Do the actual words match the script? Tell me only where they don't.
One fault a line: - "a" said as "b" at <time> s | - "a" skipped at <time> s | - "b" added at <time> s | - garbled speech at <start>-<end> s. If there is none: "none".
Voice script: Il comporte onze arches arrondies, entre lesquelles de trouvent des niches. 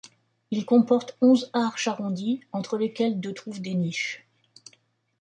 none